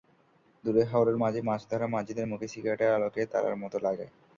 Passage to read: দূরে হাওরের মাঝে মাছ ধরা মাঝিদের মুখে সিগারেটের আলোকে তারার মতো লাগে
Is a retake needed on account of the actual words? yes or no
no